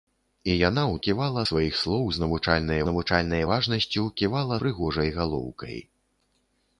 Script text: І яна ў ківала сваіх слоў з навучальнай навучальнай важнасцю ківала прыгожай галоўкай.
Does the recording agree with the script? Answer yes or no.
yes